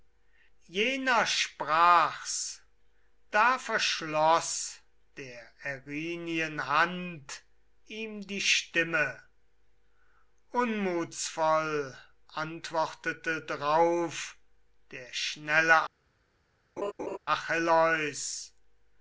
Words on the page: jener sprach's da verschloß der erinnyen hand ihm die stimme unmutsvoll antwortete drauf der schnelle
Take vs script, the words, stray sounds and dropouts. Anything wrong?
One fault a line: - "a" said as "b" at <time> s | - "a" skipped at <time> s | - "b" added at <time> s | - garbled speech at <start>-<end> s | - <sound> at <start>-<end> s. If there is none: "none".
- laugh at 16.8-17.2 s